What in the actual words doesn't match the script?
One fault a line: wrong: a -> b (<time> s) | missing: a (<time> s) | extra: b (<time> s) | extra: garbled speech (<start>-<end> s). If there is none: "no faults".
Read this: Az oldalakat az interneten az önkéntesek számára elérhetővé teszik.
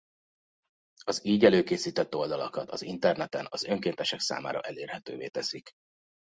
extra: így előkészített (1.2 s)